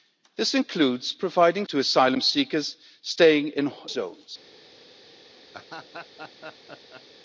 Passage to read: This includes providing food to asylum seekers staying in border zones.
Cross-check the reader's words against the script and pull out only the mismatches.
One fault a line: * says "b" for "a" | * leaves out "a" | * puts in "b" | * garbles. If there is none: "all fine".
* leaves out "food"
* leaves out "in border"